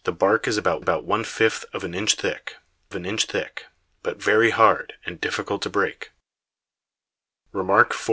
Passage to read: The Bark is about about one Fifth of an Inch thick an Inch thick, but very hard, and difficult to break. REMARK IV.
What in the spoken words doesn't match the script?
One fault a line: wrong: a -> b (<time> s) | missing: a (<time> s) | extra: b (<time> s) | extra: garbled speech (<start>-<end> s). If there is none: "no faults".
no faults